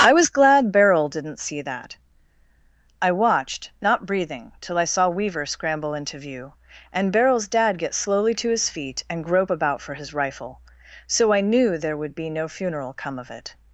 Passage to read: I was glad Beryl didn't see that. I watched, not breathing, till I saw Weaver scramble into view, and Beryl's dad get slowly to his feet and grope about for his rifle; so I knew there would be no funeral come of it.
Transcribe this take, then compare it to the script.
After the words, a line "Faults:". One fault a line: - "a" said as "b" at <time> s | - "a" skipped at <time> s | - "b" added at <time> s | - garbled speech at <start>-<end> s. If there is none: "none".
I was glad Beryl didn't see that. I watched, not breathing, till I saw Weaver scramble into view, and Beryl's dad get slowly to his feet and grope about for his rifle; so I knew there would be no funeral come of it.
Faults:
none